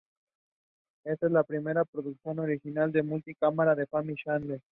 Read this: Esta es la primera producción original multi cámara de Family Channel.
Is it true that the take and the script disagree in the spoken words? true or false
false